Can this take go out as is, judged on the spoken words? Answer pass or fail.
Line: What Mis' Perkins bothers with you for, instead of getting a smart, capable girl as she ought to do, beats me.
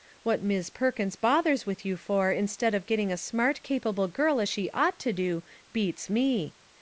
pass